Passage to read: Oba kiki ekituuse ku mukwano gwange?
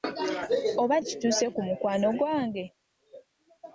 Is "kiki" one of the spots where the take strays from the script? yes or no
yes